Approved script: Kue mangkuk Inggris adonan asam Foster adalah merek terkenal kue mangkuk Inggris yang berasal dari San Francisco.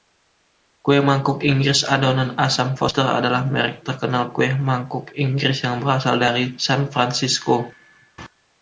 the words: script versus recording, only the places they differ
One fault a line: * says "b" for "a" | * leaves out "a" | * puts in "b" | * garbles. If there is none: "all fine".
all fine